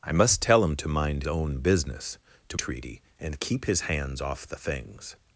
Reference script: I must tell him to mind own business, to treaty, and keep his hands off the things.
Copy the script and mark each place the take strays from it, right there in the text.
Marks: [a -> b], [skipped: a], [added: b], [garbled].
I must tell him to mind own business, to treaty, and keep his hands off the things.